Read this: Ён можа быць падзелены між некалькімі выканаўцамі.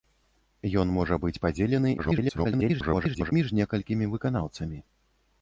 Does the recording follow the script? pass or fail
fail